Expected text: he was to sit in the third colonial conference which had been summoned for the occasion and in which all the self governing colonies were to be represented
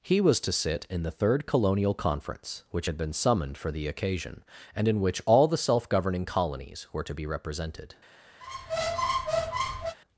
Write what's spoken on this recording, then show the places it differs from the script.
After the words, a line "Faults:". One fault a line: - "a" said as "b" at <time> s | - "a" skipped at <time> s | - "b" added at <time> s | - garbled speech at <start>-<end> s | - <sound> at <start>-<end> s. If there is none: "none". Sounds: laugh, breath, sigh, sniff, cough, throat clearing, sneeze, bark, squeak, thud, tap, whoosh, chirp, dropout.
he was to sit in the third colonial conference which had been summoned for the occasion and in which all the self governing colonies were to be represented
Faults:
- squeak at 8.4-10.0 s